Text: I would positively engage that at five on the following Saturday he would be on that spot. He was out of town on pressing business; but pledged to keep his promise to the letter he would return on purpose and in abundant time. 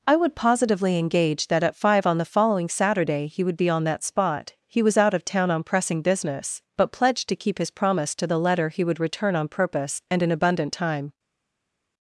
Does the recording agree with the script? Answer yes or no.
yes